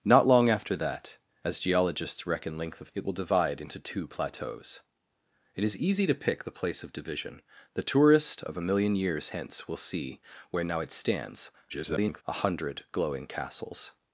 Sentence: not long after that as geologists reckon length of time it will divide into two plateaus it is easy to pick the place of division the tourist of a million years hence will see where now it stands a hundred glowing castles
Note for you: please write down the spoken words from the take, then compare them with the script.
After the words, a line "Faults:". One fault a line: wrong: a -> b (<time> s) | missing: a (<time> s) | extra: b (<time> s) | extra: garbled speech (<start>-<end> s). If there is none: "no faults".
not long after that as geologists reckon length of it will divide into two plateaus it is easy to pick the place of division the tourist of a million years hence will see where now it stands [garbled] a hundred glowing castles
Faults:
missing: time (2.9 s)
extra: garbled speech (11.7-12.2 s)